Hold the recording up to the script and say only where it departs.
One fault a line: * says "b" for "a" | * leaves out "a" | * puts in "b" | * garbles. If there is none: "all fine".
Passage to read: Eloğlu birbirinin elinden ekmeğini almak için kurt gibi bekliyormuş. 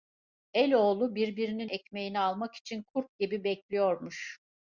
* leaves out "elinden"